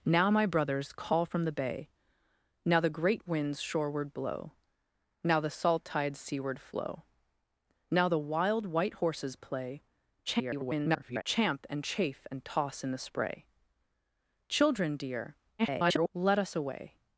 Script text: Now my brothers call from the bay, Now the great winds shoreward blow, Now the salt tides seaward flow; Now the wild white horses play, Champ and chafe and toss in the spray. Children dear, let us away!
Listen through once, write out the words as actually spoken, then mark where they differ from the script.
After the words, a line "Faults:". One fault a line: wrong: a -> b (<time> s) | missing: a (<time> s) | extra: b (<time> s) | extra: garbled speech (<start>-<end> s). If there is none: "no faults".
Now my brothers call from the bay, Now the great winds shoreward blow, Now the salt tides seaward flow; Now the wild white horses play, [garbled] Champ and chafe and toss in the spray. Children dear, [garbled] let us away!
Faults:
extra: garbled speech (10.3-11.2 s)
extra: garbled speech (15.6-16.1 s)